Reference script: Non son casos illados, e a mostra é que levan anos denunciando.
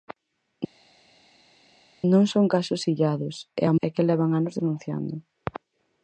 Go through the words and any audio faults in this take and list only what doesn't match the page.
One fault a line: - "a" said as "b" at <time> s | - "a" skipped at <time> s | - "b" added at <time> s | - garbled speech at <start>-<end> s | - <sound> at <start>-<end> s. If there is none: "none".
- "mostra" skipped at 3.7 s